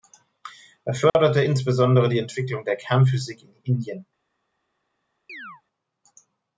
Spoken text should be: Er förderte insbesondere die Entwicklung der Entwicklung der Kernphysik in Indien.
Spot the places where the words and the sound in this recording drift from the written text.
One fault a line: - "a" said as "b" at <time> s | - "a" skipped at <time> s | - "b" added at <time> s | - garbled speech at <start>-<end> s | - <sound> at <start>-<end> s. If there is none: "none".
- dropout at 1.1-1.1 s
- "Entwicklung der" skipped at 2.8 s
- chirp at 5.3-5.6 s